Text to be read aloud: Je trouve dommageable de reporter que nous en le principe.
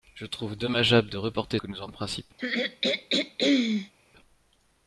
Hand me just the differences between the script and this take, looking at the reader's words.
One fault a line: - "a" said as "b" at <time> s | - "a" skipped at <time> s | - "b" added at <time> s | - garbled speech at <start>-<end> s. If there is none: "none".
none